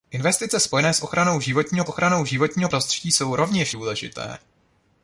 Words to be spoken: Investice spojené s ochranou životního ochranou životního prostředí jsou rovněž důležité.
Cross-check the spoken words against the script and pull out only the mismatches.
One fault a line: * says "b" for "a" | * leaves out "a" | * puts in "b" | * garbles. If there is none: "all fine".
all fine